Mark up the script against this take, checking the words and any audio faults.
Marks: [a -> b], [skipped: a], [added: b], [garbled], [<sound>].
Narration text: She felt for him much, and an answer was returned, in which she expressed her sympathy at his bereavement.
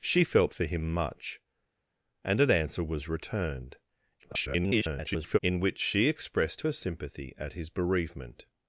She felt for him much, and an answer was returned, [garbled] in which she expressed her sympathy at his bereavement.